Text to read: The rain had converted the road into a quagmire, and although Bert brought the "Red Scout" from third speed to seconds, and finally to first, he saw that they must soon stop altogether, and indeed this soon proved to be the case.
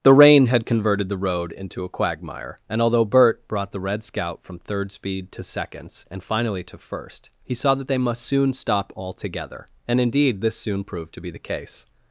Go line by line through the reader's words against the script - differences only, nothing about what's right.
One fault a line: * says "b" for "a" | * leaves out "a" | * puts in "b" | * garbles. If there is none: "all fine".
all fine